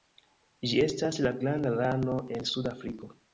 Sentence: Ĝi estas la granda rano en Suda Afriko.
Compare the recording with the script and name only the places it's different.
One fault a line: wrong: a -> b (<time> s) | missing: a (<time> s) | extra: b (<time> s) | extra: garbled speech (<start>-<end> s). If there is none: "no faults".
no faults